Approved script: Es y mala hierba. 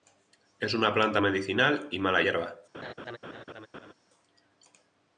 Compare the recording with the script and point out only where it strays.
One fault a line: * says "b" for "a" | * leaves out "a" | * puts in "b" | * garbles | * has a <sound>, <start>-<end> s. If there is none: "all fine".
* puts in "una planta medicinal"
* has a laugh, 2.7-3.9 s